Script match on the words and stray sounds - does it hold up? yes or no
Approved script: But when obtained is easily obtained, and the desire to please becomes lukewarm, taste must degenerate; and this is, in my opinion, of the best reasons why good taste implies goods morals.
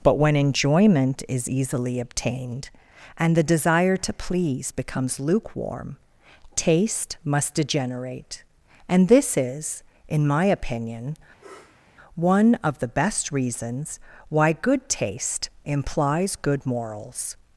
no